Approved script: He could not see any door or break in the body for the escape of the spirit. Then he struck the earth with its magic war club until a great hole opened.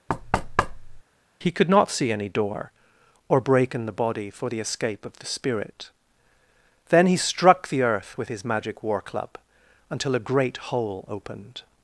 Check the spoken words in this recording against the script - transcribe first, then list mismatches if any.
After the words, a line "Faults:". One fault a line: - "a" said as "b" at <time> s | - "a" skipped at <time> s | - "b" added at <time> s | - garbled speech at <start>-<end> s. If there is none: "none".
He could not see any door or break in the body for the escape of the spirit. Then he struck the earth with his magic war club until a great hole opened.
Faults:
- "its" said as "his" at 8.3 s